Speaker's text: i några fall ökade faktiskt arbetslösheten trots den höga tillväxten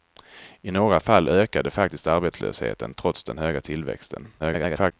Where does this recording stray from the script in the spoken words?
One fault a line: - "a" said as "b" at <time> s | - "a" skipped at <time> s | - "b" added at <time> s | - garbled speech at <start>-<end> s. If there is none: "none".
- garbled speech at 4.4-4.9 s